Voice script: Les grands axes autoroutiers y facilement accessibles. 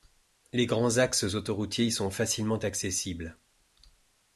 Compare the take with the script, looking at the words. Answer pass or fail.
fail